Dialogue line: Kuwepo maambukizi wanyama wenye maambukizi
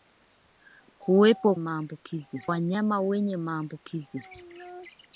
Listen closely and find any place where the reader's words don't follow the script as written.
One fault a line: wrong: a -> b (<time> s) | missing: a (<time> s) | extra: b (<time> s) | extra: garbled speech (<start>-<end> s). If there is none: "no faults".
no faults